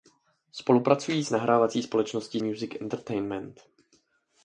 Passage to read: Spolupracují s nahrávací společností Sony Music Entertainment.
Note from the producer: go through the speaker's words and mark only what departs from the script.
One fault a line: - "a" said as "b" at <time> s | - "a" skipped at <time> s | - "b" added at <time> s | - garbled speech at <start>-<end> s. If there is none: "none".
- "Sony" skipped at 2.4 s